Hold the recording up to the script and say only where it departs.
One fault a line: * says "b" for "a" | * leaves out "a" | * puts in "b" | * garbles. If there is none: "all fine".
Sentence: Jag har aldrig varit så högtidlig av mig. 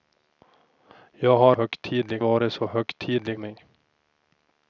* says "högtidlig" for "aldrig"
* leaves out "av"